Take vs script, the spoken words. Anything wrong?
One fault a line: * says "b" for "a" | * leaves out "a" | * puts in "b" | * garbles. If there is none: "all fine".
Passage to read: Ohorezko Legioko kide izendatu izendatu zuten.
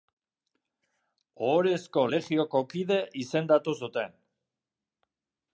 * leaves out "izendatu"